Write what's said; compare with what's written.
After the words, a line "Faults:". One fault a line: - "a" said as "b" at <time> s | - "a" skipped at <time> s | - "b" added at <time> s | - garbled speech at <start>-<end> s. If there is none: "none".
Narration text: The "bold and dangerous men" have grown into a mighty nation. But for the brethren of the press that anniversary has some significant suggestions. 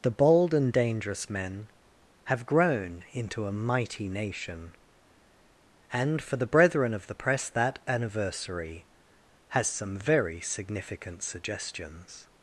The "bold and dangerous men" have grown into a mighty nation. And for the brethren of the press that anniversary has some very significant suggestions.
Faults:
- "But" said as "And" at 5.9 s
- "very" added at 10.0 s